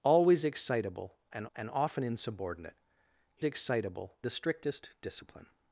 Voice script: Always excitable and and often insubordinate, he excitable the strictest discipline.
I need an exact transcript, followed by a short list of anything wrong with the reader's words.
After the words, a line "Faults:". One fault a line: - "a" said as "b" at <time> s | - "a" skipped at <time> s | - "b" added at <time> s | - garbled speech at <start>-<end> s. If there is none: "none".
Always excitable and and often insubordinate, he excitable the strictest discipline.
Faults:
none